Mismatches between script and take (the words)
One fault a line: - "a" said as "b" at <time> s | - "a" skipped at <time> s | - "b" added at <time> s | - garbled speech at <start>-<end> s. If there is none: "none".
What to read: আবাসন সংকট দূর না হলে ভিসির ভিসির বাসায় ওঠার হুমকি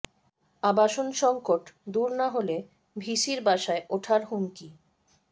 - "ভিসির" skipped at 3.4 s